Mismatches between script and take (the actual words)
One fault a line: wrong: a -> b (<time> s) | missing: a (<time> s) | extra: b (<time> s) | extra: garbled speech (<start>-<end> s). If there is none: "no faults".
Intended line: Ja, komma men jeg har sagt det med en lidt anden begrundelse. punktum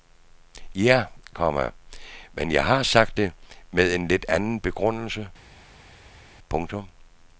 no faults